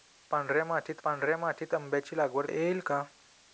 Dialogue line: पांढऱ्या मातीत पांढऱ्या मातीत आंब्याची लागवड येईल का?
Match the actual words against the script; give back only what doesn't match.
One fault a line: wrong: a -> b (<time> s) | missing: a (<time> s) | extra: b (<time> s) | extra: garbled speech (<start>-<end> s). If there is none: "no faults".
no faults